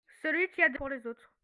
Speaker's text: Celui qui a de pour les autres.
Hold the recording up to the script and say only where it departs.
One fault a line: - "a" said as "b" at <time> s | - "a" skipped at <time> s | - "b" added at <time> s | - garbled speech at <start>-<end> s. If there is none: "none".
none